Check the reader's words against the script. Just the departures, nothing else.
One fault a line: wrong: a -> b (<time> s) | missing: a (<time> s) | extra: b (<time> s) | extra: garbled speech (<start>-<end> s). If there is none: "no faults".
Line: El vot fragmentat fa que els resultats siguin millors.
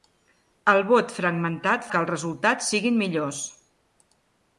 missing: fa (1.9 s)